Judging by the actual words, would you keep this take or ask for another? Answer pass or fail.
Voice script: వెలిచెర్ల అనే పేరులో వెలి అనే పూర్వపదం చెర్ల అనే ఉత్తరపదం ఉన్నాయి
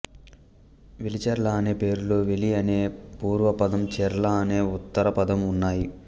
pass